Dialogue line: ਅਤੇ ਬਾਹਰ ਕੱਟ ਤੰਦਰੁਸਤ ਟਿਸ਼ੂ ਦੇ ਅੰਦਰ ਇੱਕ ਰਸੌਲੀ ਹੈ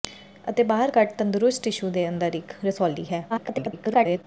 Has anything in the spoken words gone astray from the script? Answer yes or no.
yes